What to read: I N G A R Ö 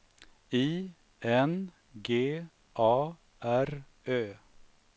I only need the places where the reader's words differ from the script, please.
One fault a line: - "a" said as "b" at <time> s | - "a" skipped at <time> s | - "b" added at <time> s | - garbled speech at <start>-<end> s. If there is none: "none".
none